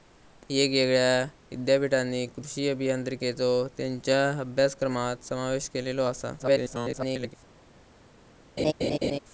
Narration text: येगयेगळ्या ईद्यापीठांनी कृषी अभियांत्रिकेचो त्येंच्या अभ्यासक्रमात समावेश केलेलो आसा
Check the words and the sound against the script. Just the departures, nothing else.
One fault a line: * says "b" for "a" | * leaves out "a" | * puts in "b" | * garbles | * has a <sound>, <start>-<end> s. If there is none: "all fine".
* garbles
* has a laugh, 8.6-9.2 s